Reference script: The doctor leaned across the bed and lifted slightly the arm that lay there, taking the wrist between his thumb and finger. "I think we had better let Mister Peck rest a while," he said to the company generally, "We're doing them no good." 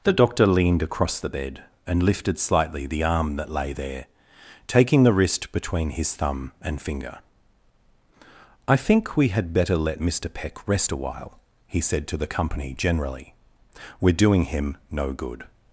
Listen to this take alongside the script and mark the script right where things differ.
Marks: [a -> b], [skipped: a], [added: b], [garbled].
The doctor leaned across the bed and lifted slightly the arm that lay there, taking the wrist between his thumb and finger. "I think we had better let Mister Peck rest a while," he said to the company generally, "We're doing [them -> him] no good."